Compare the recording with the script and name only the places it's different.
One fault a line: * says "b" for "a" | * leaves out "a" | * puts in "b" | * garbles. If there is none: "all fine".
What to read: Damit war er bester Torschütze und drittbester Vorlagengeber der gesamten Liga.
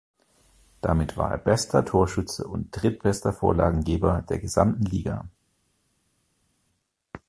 all fine